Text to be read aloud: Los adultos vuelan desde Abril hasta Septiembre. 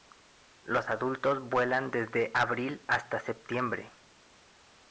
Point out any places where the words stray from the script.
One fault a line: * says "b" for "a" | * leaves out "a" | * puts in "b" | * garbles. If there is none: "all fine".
all fine